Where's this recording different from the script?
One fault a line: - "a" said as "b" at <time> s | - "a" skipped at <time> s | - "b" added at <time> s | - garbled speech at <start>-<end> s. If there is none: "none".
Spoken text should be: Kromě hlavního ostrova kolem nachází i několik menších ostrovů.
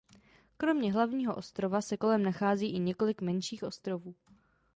- "se" added at 1.8 s